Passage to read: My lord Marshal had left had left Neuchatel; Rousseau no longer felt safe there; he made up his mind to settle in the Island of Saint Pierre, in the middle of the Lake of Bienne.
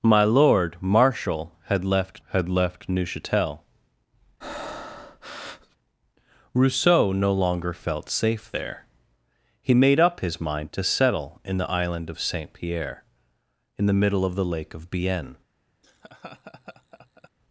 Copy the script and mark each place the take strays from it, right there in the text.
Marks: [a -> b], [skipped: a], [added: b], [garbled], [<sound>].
My lord Marshal had left had left Neuchatel; [breath] Rousseau no longer felt safe there; he made up his mind to settle in the Island of Saint Pierre, in the middle of the Lake of Bienne. [laugh]